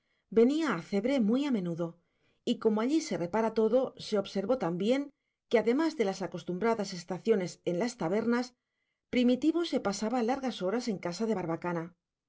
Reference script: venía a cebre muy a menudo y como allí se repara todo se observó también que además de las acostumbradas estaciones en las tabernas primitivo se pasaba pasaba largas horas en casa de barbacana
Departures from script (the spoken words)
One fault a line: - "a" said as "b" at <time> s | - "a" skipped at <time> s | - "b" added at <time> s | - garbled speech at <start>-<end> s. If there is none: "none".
- "pasaba" skipped at 10.2 s